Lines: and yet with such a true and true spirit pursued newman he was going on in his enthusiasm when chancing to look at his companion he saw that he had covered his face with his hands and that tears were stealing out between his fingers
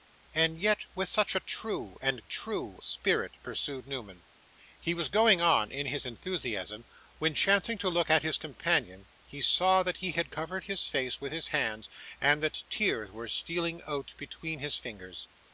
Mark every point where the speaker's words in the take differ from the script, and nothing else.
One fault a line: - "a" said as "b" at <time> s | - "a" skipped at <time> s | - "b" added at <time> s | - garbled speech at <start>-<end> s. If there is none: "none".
none